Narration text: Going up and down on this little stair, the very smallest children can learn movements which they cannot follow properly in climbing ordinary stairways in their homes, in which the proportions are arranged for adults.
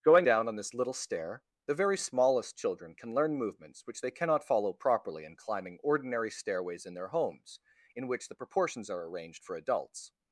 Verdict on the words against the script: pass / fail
fail